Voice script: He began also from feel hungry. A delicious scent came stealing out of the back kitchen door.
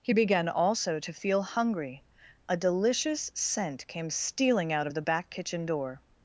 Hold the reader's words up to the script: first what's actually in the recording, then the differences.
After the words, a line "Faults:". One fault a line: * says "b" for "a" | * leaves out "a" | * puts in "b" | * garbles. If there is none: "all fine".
He began also to feel hungry. A delicious scent came stealing out of the back kitchen door.
Faults:
* says "to" for "from"